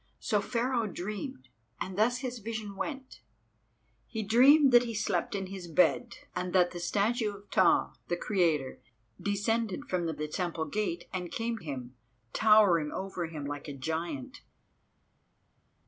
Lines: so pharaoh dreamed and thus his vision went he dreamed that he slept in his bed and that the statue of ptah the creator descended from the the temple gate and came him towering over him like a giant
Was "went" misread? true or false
false